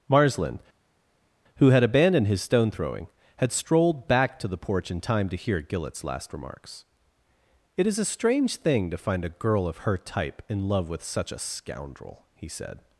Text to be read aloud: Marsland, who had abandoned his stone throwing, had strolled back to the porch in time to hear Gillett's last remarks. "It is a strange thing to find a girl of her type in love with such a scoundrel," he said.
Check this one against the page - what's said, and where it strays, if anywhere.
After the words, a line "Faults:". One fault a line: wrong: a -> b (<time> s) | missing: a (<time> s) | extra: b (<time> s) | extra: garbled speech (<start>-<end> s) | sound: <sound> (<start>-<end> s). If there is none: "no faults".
Marsland, who had abandoned his stone throwing, had strolled back to the porch in time to hear Gillett's last remarks. "It is a strange thing to find a girl of her type in love with such a scoundrel," he said.
Faults:
no faults